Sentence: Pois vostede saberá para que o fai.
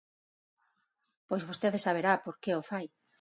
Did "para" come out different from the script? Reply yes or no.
yes